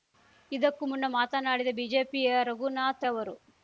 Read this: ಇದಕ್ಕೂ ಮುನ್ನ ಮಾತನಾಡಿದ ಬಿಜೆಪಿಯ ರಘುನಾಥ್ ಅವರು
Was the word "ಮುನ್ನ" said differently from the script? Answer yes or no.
no